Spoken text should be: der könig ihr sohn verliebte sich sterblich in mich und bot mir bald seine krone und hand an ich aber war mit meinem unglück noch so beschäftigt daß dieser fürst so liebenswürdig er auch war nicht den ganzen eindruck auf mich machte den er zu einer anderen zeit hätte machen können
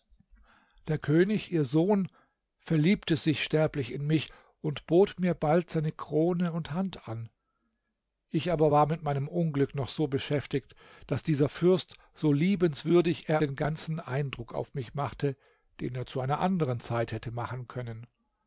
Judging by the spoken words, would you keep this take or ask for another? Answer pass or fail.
fail